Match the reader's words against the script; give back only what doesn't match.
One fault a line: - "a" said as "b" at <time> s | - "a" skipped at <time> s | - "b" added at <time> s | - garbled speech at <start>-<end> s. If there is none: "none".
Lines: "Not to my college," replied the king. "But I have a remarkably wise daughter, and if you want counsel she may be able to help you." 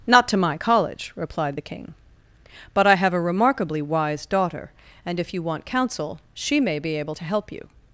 none